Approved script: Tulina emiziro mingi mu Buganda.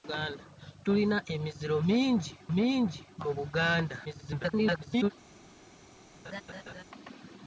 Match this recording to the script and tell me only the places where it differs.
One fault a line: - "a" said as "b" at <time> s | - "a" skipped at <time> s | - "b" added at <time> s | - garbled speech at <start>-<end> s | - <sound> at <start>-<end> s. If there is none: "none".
- "mingi" added at 2.6 s
- garbled speech at 4.0-5.1 s
- laugh at 6.2-6.8 s